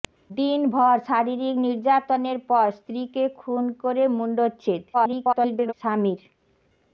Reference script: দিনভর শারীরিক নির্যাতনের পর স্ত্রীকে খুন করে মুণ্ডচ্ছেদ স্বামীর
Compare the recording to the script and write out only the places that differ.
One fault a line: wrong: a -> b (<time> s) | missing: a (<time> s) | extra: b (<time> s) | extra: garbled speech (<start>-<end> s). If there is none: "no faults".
extra: garbled speech (4.9-5.7 s)